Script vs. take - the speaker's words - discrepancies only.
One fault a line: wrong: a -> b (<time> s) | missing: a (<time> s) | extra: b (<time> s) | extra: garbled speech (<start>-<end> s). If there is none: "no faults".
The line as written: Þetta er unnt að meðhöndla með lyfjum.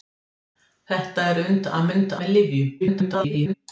wrong: meðhöndla -> unnt (1.9 s)
extra: garbled speech (2.8-3.5 s)